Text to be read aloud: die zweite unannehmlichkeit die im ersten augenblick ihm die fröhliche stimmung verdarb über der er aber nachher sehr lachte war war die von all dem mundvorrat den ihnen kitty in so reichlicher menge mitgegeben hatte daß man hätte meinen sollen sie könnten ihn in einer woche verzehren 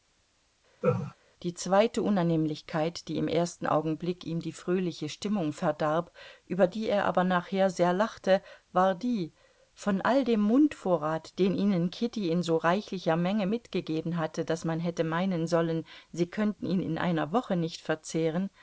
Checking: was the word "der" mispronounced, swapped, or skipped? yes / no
yes